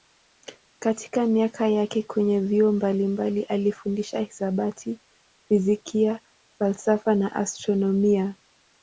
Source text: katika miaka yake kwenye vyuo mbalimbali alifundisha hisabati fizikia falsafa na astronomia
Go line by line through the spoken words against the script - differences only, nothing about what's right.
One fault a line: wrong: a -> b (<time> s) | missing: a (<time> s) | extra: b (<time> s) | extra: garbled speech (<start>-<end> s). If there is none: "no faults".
no faults